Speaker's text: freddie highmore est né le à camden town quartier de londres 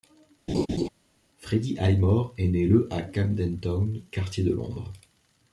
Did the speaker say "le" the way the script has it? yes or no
yes